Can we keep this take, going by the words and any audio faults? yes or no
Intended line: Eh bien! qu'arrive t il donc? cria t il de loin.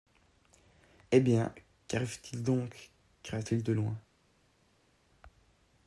yes